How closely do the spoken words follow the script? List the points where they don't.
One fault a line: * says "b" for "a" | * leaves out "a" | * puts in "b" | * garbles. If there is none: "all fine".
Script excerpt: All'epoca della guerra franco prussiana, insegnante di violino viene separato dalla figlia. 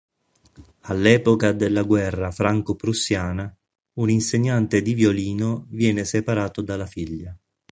* puts in "un"